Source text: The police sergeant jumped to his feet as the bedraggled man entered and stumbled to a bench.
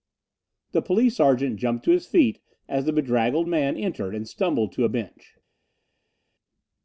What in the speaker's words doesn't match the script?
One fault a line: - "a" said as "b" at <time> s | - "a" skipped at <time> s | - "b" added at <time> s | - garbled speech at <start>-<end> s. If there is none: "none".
none